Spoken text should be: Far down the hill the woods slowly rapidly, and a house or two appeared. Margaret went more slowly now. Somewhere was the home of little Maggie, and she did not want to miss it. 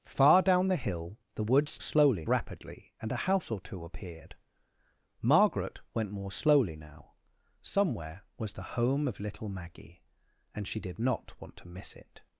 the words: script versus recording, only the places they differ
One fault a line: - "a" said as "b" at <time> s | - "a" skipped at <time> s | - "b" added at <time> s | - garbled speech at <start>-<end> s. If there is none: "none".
none